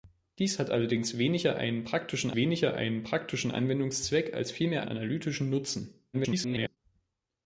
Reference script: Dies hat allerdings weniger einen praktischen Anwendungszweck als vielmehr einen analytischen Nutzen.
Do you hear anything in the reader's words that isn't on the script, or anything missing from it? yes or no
yes